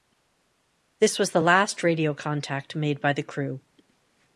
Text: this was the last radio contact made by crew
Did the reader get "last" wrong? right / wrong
right